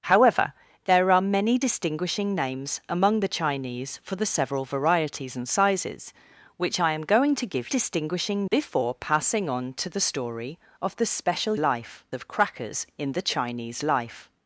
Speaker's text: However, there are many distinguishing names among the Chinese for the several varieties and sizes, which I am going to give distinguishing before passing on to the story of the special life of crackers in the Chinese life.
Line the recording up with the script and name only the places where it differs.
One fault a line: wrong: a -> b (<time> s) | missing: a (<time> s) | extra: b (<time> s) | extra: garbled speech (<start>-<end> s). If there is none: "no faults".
no faults